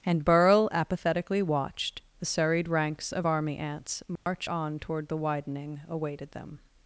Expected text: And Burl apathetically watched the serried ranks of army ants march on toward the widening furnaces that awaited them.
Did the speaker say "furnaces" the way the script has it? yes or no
no